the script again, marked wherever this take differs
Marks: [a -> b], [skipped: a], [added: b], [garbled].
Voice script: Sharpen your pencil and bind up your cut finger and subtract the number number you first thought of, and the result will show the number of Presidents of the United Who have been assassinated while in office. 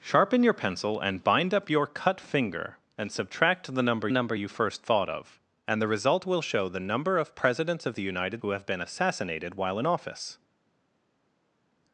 Sharpen your pencil and bind up your cut finger and subtract the number number you first thought of, and the result will show the number of Presidents of the United Who have been assassinated while in office.